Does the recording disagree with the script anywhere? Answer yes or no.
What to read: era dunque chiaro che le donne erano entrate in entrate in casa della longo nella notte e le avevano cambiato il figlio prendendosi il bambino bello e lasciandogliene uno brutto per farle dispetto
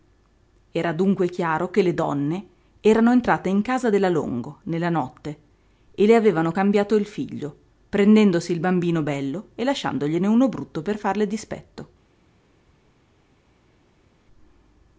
yes